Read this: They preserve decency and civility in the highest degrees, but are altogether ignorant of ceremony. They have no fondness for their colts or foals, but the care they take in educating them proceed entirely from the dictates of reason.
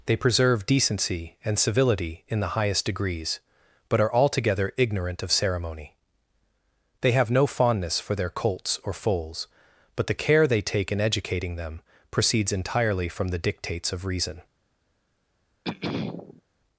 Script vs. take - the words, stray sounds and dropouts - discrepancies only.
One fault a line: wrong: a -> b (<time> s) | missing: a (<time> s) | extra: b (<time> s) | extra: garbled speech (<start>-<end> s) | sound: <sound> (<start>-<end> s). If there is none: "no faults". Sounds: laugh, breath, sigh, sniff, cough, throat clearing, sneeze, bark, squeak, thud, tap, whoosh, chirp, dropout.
wrong: proceed -> proceeds (12.1 s)
sound: throat clearing (15.6-16.4 s)